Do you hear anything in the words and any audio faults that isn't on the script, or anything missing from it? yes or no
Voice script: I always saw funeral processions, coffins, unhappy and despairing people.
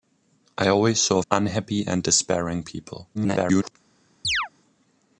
yes